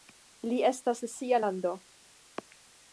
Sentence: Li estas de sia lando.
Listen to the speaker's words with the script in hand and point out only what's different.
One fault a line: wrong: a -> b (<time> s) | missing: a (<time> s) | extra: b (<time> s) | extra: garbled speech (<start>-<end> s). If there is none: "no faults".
no faults